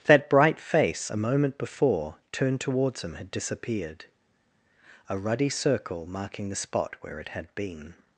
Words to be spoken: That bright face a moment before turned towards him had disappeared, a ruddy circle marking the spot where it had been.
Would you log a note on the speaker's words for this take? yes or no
no